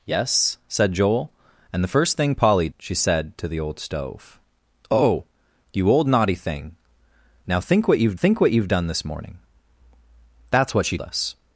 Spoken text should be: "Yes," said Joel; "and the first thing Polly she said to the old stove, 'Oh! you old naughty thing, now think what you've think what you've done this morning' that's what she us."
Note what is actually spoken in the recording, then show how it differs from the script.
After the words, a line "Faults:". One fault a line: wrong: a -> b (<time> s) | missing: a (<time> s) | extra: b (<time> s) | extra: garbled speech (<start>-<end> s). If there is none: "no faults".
"Yes," said Joel; "and the first thing Polly she said to the old stove, 'Oh! you old naughty thing, now think what you've think what you've done this morning' that's what she us."
Faults:
no faults